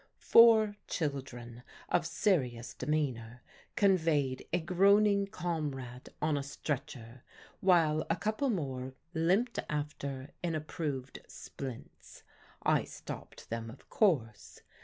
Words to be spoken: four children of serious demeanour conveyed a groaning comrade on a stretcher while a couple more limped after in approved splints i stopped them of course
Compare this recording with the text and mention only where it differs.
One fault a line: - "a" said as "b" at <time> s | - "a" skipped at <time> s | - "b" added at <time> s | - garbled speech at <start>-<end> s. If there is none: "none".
none